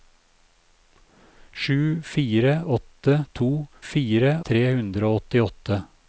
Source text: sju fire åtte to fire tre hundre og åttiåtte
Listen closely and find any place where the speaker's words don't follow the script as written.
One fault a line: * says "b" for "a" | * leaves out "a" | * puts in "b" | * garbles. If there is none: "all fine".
all fine